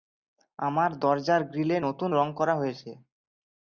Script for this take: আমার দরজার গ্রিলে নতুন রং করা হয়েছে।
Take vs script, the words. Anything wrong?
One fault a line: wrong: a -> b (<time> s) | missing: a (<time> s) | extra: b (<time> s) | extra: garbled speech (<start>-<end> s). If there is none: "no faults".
no faults